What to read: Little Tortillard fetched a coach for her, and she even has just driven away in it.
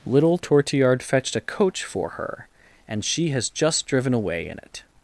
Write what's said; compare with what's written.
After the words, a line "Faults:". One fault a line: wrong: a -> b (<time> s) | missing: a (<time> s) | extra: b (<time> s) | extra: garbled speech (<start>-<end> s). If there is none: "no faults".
Little Tortillard fetched a coach for her, and she has just driven away in it.
Faults:
missing: even (3.3 s)